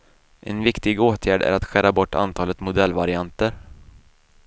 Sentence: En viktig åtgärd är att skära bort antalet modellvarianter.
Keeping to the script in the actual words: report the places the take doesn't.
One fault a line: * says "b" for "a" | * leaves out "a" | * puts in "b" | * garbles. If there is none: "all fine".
all fine